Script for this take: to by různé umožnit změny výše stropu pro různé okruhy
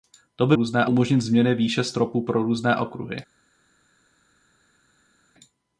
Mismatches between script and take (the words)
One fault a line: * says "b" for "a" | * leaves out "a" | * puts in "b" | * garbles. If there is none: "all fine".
all fine